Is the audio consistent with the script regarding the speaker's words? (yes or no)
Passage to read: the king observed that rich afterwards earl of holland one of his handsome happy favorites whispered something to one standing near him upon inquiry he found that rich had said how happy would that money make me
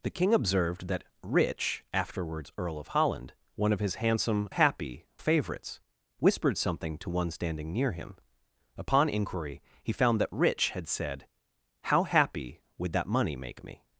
yes